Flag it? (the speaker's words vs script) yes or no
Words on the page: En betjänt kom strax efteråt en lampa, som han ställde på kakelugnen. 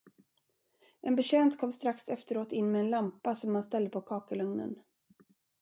yes